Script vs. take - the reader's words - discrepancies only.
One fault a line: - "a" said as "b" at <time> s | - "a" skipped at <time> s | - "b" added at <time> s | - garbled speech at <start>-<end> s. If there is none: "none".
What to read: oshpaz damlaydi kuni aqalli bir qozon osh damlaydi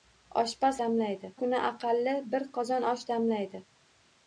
none